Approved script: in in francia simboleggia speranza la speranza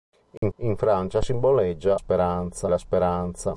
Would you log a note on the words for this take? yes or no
no